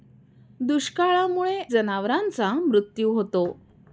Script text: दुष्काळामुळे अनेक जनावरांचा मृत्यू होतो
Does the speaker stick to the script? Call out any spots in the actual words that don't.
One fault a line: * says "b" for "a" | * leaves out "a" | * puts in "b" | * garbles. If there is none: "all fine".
* leaves out "अनेक"